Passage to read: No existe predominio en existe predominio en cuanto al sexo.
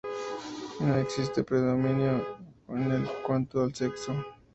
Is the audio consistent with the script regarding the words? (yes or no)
no